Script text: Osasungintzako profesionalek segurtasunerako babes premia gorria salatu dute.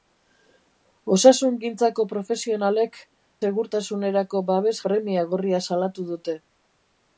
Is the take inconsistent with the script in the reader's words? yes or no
no